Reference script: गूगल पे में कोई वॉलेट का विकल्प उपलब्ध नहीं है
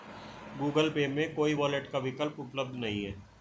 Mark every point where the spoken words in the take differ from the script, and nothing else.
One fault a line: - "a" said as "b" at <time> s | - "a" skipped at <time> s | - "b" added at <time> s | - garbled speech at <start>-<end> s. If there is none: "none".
none